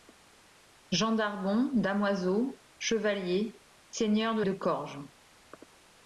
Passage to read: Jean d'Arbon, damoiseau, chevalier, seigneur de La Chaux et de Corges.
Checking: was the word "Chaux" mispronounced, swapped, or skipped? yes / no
yes